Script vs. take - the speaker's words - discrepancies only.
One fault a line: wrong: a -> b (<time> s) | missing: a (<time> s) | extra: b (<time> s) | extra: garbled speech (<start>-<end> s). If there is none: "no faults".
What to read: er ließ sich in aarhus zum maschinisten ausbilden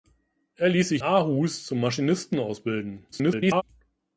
missing: in (1.0 s)
extra: garbled speech (3.1-3.6 s)